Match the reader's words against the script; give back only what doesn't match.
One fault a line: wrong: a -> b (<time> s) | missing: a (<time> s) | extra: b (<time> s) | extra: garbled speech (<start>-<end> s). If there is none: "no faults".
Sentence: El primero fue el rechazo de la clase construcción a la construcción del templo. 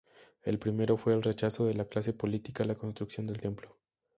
wrong: construcción -> política (2.1 s)